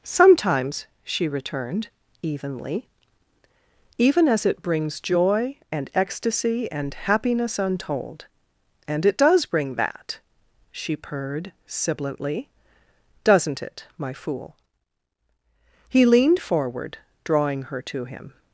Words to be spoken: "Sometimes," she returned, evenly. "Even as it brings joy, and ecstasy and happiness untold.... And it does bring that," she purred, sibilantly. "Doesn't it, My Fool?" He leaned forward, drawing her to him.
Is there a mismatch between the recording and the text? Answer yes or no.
no